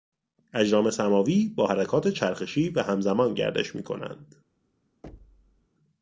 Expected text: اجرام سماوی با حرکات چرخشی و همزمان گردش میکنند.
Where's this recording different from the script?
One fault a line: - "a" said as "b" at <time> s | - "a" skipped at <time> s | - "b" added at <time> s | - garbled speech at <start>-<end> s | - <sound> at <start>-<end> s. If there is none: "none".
- thud at 5.0-5.7 s